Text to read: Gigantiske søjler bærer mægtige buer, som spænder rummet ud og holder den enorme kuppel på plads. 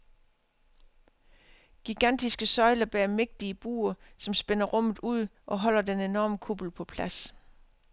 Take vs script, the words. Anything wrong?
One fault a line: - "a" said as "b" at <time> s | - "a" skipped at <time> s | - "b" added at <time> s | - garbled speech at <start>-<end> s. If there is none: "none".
none